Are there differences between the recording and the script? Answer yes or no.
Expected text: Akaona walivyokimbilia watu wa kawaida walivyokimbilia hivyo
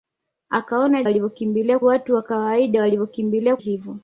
no